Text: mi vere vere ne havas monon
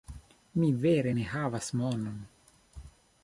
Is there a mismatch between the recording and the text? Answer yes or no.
yes